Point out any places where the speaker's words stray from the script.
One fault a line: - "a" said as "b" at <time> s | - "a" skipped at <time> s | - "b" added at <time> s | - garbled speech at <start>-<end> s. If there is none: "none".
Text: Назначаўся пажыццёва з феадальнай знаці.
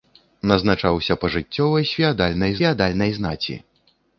- "феадальнай" added at 2.6 s